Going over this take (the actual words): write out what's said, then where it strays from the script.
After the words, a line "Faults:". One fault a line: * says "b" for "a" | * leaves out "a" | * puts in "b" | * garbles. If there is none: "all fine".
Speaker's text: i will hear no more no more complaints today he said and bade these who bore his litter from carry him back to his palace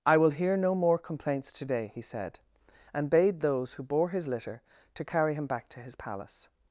i will hear no more complaints today he said and bade those who bore his litter to carry him back to his palace
Faults:
* leaves out "no more"
* says "those" for "these"
* says "to" for "from"